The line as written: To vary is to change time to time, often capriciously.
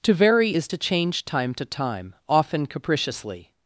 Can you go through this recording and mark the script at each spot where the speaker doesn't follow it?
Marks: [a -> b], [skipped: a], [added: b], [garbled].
To vary is to change time to time, often capriciously.